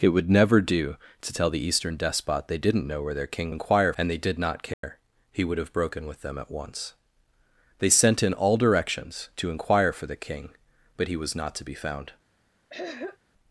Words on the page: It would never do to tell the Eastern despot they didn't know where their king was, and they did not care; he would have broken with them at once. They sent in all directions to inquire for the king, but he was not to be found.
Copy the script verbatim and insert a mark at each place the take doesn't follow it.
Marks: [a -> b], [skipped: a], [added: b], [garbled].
It would never do to tell the Eastern despot they didn't know where their king [was, -> inquire] and they did not care; he would have broken with them at once. They sent in all directions to inquire for the king, but he was not to be found.